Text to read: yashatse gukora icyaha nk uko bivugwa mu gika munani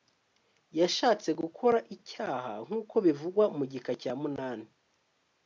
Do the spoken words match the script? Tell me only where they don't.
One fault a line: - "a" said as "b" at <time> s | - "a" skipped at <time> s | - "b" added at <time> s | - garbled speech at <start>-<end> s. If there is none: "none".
- "cya" added at 4.0 s